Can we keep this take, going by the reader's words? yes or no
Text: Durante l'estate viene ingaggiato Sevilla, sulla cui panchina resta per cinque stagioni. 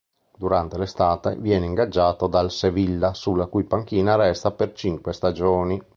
no